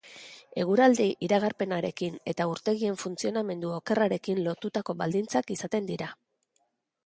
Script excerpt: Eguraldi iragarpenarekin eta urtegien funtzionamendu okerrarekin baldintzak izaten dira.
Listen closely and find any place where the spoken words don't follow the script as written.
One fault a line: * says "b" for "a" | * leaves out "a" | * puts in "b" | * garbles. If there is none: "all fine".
* puts in "lotutako"